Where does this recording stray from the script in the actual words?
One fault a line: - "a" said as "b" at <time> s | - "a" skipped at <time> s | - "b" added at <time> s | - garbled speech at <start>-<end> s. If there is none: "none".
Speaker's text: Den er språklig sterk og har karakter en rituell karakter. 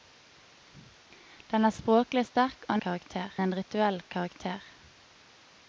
none